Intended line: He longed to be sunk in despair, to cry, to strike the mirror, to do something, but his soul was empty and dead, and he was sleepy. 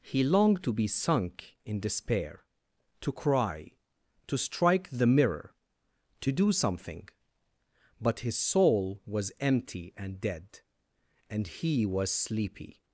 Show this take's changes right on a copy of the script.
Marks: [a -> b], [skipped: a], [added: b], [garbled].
He longed to be sunk in despair, to cry, to strike the mirror, to do something, but his soul was empty and dead, and he was sleepy.